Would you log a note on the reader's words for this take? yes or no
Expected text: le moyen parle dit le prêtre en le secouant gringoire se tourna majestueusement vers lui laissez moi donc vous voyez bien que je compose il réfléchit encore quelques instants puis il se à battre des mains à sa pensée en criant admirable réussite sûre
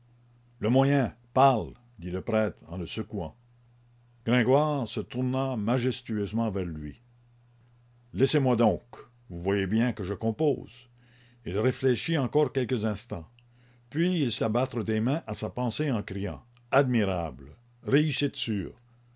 no